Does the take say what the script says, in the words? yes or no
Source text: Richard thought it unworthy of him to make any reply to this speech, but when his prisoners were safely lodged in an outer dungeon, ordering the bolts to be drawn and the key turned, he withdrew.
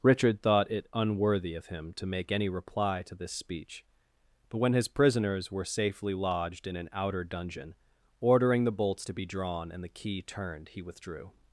yes